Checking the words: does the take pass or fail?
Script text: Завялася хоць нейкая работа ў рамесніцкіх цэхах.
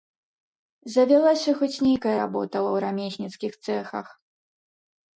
pass